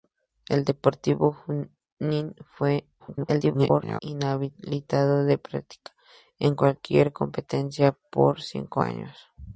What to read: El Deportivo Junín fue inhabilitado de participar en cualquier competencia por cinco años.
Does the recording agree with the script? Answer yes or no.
no